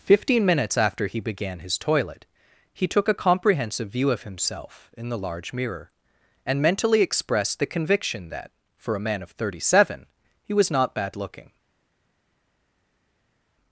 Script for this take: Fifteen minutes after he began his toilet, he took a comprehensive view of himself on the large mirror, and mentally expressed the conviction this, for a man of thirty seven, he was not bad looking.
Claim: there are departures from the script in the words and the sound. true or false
true